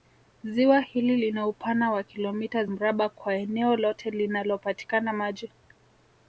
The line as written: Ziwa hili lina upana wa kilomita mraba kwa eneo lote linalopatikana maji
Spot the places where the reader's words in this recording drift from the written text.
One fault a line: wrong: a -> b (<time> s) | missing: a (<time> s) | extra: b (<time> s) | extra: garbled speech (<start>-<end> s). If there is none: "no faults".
no faults